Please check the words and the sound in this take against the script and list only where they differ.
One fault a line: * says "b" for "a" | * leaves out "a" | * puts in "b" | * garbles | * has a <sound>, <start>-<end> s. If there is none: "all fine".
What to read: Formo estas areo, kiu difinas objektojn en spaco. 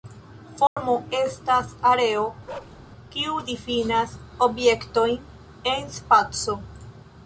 * has a dropout, 0.7-0.8 s
* has a bark, 2.5-2.8 s